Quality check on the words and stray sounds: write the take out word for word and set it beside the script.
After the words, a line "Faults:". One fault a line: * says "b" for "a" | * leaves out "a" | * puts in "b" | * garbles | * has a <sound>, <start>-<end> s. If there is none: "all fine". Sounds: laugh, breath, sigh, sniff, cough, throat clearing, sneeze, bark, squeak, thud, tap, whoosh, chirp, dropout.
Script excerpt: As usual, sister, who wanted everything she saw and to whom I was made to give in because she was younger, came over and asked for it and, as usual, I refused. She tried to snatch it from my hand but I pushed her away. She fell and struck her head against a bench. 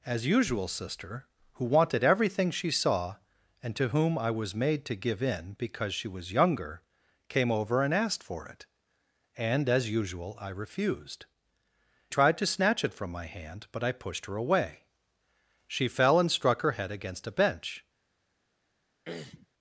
As usual, sister, who wanted everything she saw and to whom I was made to give in because she was younger, came over and asked for it and, as usual, I refused. Tried to snatch it from my hand but I pushed her away. She fell and struck her head against a bench.
Faults:
* leaves out "She"
* has a throat clearing, 19.1-19.5 s